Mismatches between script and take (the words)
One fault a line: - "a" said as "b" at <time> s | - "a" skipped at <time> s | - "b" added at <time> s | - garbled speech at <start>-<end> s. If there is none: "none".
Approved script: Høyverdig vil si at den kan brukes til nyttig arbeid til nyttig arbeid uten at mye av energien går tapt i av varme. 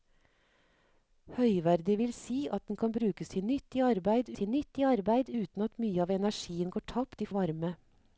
none